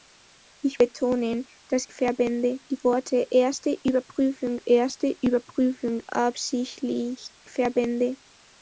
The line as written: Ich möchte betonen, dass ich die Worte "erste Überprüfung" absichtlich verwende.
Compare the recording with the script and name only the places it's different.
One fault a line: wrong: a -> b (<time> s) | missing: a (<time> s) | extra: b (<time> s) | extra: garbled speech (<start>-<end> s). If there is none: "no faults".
missing: möchte (0.8 s)
wrong: ich -> verwende (1.9 s)
extra: erste Überprüfung (4.7 s)